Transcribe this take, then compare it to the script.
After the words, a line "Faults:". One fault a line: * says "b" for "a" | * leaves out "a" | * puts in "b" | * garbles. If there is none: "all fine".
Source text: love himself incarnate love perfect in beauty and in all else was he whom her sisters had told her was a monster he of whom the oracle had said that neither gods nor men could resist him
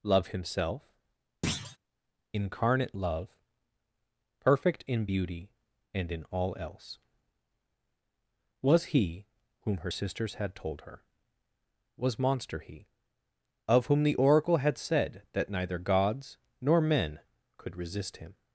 love himself incarnate love perfect in beauty and in all else was he whom her sisters had told her was monster he of whom the oracle had said that neither gods nor men could resist him
Faults:
* leaves out "a"